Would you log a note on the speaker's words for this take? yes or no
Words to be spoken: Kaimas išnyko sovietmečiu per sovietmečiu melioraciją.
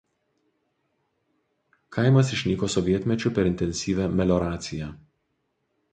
yes